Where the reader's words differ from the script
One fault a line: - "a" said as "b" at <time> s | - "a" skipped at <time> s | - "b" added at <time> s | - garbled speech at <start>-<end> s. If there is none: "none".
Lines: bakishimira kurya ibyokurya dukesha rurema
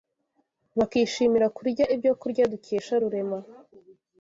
none